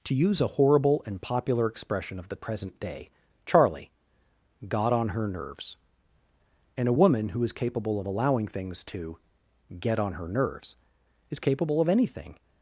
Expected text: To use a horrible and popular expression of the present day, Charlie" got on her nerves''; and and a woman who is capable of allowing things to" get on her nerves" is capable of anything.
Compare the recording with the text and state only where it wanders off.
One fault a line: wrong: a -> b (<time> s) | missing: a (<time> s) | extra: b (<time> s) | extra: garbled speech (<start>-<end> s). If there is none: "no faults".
missing: and (6.9 s)